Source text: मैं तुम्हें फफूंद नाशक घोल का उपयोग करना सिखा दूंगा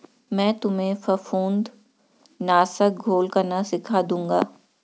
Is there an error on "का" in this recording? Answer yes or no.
yes